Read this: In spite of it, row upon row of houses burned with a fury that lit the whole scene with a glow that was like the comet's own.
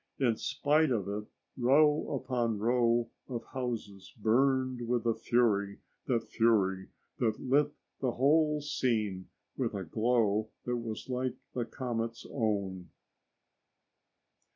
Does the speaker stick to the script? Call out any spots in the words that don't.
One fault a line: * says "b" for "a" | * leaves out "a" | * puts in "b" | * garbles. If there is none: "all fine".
* puts in "fury that"